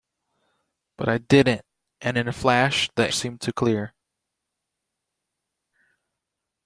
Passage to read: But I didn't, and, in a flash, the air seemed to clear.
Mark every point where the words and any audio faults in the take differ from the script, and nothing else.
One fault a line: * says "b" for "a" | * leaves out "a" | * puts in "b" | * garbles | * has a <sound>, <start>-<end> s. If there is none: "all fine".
* leaves out "air"